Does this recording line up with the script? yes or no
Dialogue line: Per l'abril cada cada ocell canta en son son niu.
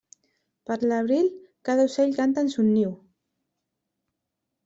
no